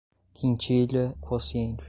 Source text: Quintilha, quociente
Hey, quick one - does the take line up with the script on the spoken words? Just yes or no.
yes